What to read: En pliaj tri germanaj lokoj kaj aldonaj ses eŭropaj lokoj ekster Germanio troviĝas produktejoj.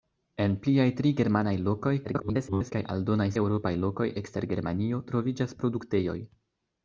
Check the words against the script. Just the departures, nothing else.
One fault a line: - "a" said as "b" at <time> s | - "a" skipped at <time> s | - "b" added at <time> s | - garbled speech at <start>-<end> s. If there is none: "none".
- garbled speech at 2.0-2.7 s
- "ses" skipped at 3.3 s